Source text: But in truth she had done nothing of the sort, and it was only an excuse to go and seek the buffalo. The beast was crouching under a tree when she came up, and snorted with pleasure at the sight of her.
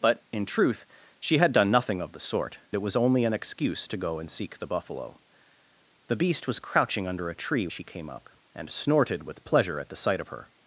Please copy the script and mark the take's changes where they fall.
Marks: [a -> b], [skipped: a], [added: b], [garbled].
But in truth she had done nothing of the sort, [skipped: and] it was only an excuse to go and seek the buffalo. The beast was crouching under a tree [skipped: when] she came up, and snorted with pleasure at the sight of her.